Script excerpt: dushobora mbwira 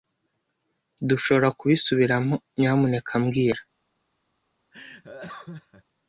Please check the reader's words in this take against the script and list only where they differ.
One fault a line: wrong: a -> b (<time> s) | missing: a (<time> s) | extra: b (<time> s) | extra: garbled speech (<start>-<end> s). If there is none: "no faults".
extra: kubisubiramo nyamuneka (1.6 s)